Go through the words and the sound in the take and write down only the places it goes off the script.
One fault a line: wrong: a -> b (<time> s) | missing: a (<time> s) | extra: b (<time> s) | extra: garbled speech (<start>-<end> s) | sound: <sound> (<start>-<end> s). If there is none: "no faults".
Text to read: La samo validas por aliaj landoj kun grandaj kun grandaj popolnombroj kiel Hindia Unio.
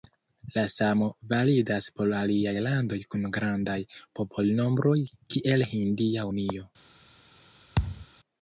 missing: kun grandaj (3.8 s)
sound: thud (7.8-8.1 s)